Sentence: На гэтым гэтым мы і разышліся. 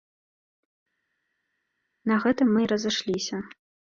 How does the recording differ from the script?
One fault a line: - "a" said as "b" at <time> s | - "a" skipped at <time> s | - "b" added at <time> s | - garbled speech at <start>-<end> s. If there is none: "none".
- "гэтым" skipped at 2.5 s